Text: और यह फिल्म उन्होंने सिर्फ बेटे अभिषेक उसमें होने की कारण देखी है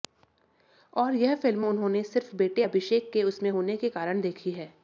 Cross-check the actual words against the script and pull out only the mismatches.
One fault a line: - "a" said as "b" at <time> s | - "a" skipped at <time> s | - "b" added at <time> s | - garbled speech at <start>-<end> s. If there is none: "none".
- "के" added at 3.1 s
- "की" said as "के" at 3.8 s